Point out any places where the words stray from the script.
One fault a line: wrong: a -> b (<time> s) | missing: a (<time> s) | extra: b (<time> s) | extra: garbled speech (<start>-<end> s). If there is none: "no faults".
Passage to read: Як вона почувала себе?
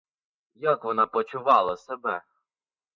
no faults